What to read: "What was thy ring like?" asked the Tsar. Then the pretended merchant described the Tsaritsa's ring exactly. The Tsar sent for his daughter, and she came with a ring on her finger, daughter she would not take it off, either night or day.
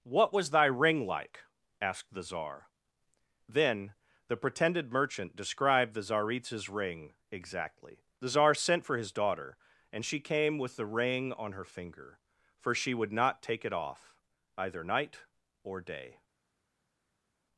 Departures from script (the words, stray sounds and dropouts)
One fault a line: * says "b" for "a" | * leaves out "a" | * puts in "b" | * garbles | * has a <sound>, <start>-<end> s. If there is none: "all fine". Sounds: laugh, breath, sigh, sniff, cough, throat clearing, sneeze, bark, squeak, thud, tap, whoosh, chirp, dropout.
* says "the" for "a"
* says "for" for "daughter"